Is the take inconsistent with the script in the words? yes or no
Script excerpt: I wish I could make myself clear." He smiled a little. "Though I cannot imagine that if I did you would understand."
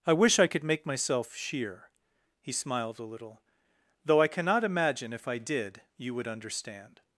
yes